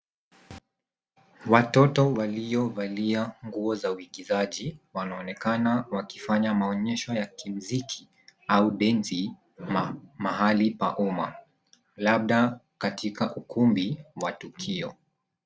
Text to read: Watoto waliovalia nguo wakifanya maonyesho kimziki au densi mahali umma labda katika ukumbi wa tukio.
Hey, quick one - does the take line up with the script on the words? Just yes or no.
no